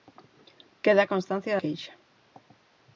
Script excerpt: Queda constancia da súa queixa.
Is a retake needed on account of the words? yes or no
yes